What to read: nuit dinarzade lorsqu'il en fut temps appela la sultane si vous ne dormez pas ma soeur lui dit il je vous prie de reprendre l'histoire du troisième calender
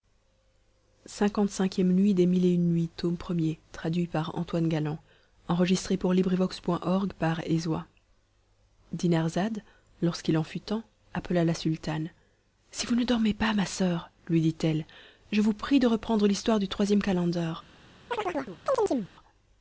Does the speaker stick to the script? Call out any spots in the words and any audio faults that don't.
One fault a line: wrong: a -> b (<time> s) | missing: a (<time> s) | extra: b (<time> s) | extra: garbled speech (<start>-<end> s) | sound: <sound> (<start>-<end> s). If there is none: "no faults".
wrong: il -> elle (14.6 s)
sound: chirp (18.1-19.1 s)